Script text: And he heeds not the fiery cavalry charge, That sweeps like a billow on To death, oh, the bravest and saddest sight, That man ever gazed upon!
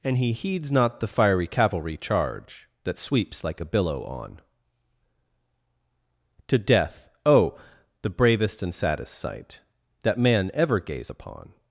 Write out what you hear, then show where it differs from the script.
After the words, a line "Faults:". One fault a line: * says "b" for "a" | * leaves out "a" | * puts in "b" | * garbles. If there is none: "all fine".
And he heeds not the fiery cavalry charge, That sweeps like a billow on To death, oh, the bravest and saddest sight, That man ever gaze upon!
Faults:
* says "gaze" for "gazed"